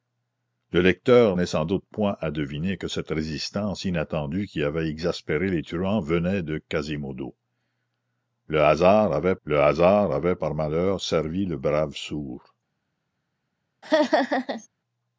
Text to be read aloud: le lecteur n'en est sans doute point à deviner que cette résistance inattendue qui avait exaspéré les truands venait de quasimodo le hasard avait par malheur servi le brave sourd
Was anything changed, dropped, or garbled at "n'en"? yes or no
yes